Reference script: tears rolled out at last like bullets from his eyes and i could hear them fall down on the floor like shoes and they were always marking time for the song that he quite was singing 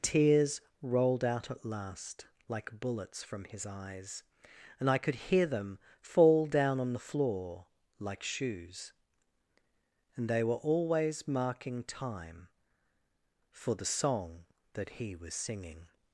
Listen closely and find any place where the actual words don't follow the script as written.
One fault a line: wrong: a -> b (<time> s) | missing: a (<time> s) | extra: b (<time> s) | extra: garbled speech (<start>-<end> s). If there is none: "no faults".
missing: quite (15.2 s)